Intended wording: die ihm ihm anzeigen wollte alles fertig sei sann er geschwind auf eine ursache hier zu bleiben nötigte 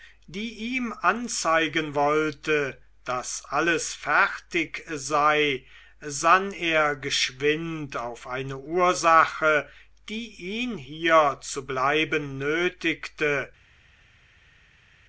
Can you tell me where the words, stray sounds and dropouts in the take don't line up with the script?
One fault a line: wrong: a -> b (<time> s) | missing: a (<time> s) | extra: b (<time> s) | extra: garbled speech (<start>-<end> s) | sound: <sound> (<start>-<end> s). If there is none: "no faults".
missing: ihm (0.9 s)
extra: daß (3.0 s)
extra: die ihn (10.1 s)